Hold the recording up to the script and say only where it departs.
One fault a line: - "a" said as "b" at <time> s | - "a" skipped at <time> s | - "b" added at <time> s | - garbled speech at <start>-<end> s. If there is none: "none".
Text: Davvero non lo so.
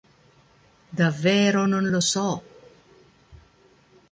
none